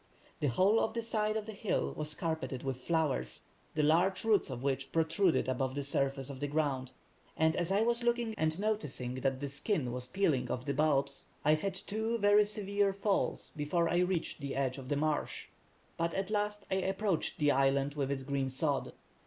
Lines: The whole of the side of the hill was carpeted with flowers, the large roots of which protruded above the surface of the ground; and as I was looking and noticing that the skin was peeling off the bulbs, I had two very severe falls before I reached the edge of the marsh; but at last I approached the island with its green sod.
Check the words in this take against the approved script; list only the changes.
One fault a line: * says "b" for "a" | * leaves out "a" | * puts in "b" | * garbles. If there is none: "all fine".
all fine